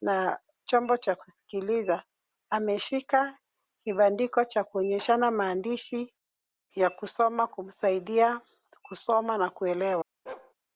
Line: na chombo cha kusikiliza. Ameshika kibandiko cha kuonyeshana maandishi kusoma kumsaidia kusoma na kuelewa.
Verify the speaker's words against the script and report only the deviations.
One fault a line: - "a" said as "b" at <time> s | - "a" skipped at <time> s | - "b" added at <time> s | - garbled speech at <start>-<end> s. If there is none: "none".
- "ya" added at 6.8 s